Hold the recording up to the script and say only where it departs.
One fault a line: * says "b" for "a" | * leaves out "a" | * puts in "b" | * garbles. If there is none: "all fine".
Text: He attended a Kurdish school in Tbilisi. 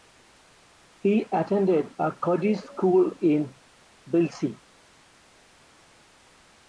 all fine